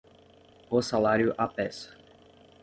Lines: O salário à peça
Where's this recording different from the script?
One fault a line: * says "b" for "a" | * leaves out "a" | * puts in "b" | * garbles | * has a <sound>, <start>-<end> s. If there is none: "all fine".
all fine